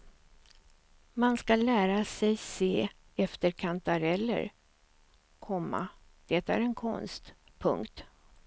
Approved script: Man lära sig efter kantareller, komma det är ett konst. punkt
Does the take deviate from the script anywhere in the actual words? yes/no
yes